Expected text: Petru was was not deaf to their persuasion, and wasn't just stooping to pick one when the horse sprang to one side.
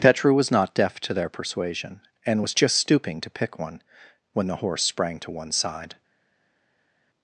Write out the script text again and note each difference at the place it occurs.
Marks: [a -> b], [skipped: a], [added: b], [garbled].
Petru was [skipped: was] not deaf to their persuasion, and [wasn't -> was] just stooping to pick one when the horse sprang to one side.